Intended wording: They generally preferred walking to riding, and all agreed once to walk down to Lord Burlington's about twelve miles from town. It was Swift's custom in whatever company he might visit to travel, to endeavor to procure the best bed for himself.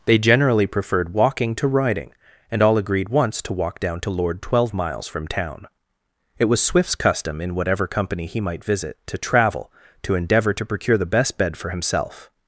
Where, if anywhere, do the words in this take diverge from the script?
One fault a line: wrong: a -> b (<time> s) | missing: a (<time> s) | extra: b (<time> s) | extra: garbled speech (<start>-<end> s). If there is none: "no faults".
missing: Burlington's about (4.4 s)